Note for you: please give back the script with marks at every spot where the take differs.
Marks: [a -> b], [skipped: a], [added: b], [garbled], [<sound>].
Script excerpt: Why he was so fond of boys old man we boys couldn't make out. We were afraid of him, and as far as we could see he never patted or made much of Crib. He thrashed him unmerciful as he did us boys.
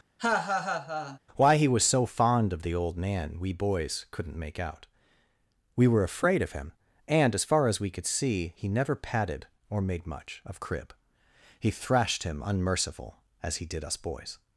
[laugh] Why he was so fond of [boys -> the] old man we boys couldn't make out. We were afraid of him, and as far as we could see he never patted or made much of Crib. He thrashed him unmerciful as he did us boys.